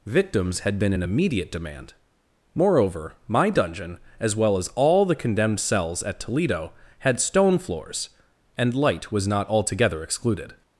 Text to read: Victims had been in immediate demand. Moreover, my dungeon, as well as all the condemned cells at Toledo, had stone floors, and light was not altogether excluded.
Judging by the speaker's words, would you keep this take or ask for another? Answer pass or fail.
pass